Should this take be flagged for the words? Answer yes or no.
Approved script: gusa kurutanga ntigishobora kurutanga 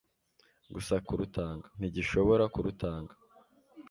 no